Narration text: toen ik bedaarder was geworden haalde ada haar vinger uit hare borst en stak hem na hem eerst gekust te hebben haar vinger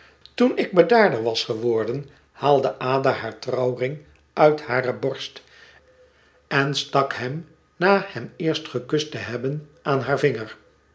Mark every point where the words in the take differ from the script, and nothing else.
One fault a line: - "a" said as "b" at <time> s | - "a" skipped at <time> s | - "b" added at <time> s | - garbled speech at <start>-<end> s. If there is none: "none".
- "vinger" said as "trouwring" at 3.4 s
- "aan" added at 9.8 s